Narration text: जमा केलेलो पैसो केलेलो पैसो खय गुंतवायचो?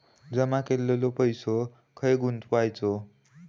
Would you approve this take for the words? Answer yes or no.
no